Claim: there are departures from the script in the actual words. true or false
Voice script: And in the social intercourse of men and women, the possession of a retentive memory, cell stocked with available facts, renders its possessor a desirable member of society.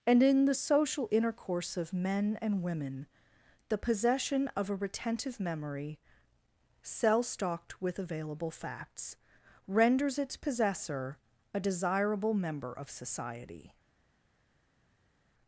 false